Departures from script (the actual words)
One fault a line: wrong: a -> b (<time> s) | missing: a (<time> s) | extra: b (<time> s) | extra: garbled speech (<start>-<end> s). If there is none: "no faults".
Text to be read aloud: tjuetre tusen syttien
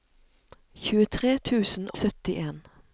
no faults